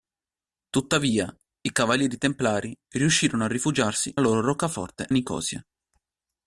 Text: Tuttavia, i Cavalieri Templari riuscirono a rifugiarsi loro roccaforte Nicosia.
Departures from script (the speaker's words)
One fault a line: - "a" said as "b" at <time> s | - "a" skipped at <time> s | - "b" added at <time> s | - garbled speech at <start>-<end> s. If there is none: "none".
none